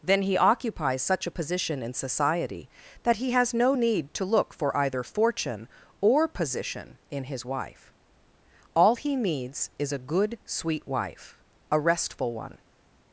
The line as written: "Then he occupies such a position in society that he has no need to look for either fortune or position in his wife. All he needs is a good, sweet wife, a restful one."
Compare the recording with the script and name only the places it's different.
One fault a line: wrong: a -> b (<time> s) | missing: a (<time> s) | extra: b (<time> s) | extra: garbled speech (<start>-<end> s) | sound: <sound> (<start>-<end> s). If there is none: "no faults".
no faults